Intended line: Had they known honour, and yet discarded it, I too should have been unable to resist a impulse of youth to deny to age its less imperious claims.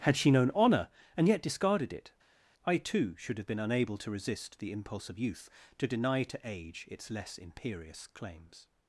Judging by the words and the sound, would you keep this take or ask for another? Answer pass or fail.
fail